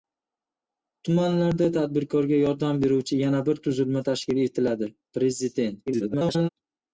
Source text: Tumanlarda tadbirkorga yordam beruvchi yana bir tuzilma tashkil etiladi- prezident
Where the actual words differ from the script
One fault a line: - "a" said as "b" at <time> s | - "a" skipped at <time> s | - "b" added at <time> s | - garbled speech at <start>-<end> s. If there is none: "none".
- garbled speech at 5.9-6.5 s